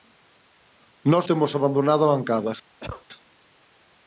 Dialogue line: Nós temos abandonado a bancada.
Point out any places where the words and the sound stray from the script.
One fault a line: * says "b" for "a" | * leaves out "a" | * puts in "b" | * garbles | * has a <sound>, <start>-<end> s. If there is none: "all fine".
* has a cough, 2.8-3.0 s